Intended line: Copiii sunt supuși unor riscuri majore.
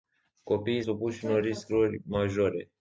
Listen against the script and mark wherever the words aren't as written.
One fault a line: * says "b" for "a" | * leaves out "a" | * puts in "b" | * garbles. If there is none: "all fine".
* leaves out "sunt"